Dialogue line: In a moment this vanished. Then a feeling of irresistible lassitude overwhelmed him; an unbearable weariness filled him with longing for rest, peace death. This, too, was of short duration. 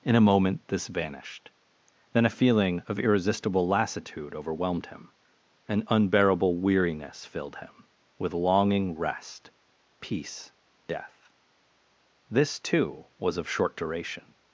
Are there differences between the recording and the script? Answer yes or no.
yes